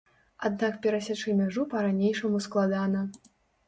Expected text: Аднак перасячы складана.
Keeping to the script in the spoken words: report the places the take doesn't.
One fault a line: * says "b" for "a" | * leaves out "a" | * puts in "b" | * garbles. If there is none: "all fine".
* puts in "мяжу па ранейшаму"